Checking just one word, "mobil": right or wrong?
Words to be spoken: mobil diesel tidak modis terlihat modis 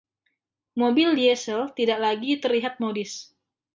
right